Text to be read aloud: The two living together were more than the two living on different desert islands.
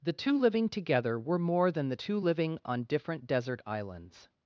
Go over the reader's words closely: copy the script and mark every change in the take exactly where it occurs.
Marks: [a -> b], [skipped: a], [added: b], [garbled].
The two living together were more than the two living on different desert islands.